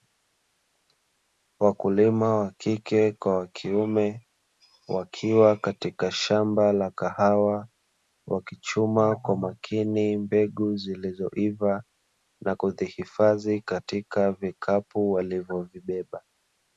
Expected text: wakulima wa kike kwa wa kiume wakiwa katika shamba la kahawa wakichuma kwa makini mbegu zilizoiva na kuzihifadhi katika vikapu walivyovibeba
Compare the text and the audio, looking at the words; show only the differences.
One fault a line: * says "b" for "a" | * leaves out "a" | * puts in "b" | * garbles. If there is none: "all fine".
all fine